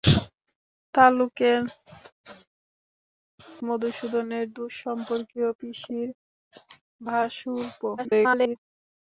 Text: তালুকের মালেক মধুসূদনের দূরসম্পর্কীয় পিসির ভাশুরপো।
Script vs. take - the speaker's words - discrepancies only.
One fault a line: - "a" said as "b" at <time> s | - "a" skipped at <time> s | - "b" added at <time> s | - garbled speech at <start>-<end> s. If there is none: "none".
- "মালেক" skipped at 1.6 s
- garbled speech at 8.0-8.6 s